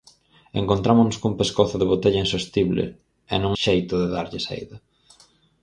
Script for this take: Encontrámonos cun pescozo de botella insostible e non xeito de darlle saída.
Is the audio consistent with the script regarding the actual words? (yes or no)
yes